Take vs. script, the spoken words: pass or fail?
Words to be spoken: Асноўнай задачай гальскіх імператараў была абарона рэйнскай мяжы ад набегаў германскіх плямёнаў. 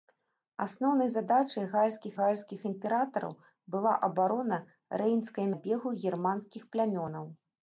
fail